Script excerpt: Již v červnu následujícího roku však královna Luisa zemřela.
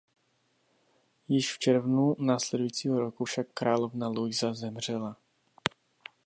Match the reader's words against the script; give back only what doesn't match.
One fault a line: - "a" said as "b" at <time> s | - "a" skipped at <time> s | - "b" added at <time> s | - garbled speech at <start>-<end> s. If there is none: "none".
none